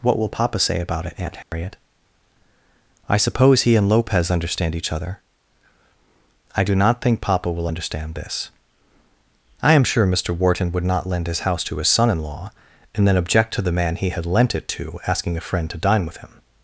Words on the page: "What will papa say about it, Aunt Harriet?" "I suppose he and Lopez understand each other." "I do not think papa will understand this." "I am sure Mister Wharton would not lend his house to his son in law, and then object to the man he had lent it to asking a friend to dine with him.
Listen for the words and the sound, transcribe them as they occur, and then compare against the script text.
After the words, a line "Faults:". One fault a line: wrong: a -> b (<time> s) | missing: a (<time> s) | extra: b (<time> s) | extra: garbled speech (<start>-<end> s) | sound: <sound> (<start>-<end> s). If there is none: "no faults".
"What will papa say about it, Aunt Harriet?" "I suppose he and Lopez understand each other." "I do not think papa will understand this." "I am sure Mister Wharton would not lend his house to his son in law, and then object to the man he had lent it to asking a friend to dine with him.
Faults:
sound: dropout (1.4-1.5 s)